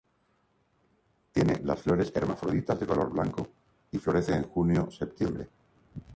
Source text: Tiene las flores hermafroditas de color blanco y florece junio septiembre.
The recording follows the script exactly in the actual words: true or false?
false